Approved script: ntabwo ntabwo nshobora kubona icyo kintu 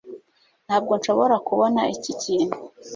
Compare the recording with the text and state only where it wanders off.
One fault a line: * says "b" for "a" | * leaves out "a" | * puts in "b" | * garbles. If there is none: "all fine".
* leaves out "ntabwo"
* says "iki" for "icyo"